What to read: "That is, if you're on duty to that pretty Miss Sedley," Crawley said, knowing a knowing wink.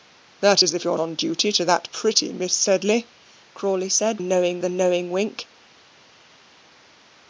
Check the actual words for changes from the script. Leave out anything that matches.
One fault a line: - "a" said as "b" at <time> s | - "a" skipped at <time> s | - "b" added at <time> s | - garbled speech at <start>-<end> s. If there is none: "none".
none